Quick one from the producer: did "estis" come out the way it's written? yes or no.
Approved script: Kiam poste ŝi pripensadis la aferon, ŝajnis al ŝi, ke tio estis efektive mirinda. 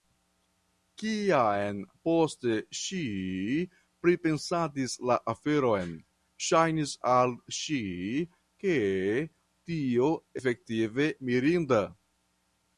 no